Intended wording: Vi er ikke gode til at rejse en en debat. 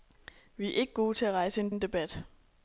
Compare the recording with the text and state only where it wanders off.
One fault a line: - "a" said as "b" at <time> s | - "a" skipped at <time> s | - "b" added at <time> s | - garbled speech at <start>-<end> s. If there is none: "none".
none